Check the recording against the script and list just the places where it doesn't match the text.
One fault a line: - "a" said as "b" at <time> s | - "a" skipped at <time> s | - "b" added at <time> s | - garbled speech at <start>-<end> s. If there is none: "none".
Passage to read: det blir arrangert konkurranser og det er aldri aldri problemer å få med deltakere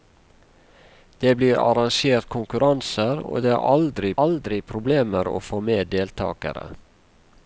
none